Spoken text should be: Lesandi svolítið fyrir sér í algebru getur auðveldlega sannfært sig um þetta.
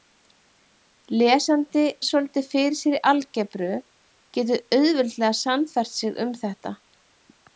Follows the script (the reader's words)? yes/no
yes